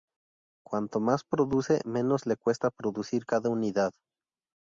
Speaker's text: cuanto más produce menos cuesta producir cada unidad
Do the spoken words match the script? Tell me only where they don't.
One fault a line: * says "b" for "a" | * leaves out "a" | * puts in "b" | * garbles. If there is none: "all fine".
* puts in "le"